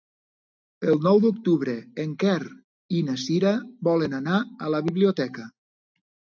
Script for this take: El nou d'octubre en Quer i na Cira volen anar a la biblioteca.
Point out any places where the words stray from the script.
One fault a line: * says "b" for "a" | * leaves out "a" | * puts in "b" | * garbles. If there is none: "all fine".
all fine